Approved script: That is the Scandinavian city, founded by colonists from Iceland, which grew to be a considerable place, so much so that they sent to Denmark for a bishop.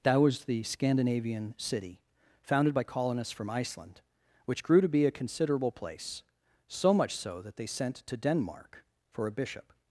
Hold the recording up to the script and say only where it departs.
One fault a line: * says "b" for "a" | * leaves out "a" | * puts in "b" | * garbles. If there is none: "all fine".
* says "was" for "is"